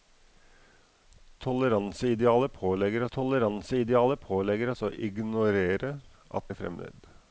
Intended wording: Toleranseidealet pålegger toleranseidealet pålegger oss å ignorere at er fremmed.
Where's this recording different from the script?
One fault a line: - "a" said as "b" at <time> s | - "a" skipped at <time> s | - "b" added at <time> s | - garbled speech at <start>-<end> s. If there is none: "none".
none